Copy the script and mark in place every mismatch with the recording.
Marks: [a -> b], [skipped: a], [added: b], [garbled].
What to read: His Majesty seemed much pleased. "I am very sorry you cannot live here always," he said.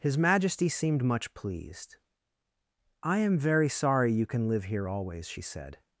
His Majesty seemed much pleased. "I am very sorry you [cannot -> can] live here always," [he -> she] said.